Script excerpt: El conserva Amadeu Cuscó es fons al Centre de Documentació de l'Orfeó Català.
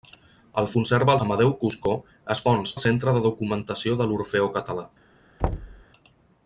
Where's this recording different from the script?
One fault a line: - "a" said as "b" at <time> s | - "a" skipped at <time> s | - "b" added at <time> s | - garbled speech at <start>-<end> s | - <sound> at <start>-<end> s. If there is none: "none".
- thud at 5.4-5.8 s